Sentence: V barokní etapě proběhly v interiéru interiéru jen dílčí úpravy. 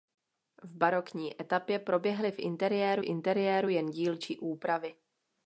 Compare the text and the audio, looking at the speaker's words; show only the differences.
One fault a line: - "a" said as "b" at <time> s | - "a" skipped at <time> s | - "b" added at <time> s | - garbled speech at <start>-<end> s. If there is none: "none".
none